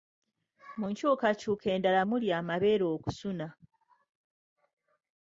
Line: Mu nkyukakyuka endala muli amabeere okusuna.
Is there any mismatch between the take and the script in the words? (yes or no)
no